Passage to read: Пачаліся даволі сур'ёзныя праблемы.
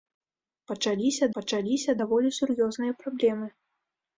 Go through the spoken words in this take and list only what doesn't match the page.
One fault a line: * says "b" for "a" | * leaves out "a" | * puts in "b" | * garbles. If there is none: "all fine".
* puts in "пачаліся"